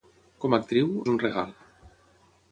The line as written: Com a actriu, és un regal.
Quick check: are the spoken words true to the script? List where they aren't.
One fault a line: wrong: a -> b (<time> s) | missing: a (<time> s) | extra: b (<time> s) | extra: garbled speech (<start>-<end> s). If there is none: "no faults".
no faults